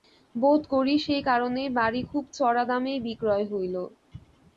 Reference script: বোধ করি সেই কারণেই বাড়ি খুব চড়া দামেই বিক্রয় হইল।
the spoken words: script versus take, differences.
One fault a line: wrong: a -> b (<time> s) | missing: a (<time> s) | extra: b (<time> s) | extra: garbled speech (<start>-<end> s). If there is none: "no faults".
no faults